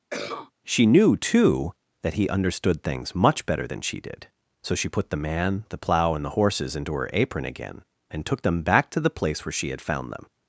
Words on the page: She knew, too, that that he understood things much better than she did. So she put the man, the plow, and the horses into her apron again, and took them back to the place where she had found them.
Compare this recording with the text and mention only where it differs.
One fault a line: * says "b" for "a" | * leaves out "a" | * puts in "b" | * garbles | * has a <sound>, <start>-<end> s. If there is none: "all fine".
* has a cough, 0.1-0.5 s
* leaves out "that"